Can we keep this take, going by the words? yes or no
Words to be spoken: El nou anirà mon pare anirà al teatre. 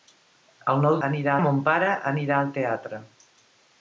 yes